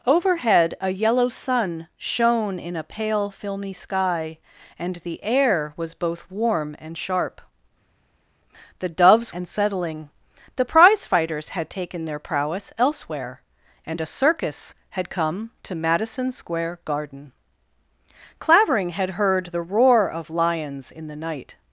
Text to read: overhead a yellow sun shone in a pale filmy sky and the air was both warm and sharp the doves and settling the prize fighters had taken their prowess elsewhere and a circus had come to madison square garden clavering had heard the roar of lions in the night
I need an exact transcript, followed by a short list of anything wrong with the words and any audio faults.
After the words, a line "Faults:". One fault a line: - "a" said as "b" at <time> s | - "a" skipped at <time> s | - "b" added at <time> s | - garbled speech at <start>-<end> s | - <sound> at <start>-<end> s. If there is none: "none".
overhead a yellow sun shone in a pale filmy sky and the air was both warm and sharp the doves and settling the prize fighters had taken their prowess elsewhere and a circus had come to madison square garden clavering had heard the roar of lions in the night
Faults:
none